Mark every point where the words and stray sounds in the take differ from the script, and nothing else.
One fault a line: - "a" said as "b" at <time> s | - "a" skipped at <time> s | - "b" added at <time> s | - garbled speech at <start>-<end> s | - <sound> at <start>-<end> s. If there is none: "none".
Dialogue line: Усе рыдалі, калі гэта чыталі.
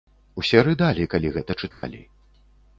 - dropout at 1.7-1.8 s